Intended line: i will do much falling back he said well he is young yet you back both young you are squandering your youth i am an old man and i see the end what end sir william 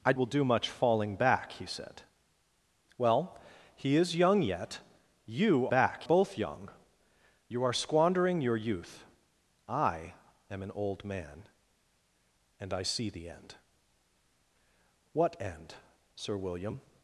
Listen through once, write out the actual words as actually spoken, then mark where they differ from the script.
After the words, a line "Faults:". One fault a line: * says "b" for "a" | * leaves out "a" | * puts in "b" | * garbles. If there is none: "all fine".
i will do much falling back he said well he is young yet you back both young you are squandering your youth i am an old man and i see the end what end sir william
Faults:
all fine